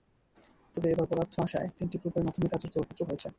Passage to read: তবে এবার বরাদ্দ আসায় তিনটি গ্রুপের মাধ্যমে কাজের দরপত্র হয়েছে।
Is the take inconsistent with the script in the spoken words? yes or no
no